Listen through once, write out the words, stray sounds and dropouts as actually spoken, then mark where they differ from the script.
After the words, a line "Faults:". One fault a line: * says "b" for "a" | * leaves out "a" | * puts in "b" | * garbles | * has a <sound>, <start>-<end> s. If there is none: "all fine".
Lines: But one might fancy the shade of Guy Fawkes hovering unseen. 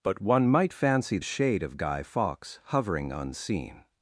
But one might fancy shade of Guy Fawkes hovering unseen.
Faults:
* leaves out "the"